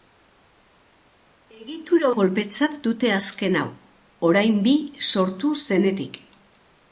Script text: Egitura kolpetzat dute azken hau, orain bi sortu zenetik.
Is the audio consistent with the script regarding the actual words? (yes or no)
yes